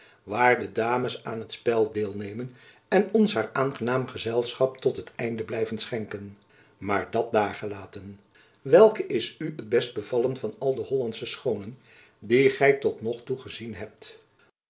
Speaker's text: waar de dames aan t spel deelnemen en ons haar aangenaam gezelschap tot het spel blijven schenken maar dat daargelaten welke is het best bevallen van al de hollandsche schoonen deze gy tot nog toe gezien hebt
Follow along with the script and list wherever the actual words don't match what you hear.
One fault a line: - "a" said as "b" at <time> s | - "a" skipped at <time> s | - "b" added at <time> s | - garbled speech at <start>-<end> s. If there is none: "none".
- "spel" said as "einde" at 5.2 s
- "u" added at 9.4 s
- "deze" said as "die" at 12.2 s